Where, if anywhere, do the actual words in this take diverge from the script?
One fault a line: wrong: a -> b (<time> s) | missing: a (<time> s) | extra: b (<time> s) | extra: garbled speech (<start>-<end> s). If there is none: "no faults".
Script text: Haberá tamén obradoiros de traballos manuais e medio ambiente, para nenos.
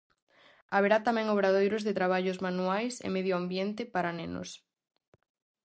no faults